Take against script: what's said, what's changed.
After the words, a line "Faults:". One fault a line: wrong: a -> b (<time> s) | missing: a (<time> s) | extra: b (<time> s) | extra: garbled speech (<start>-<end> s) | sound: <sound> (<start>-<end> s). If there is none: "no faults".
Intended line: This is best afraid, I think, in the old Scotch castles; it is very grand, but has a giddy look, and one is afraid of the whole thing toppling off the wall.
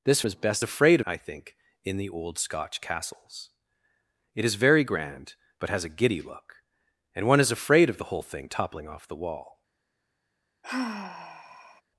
This is best afraid, I think, in the old Scotch castles; it is very grand, but has a giddy look, and one is afraid of the whole thing toppling off the wall.
Faults:
sound: sigh (10.6-11.8 s)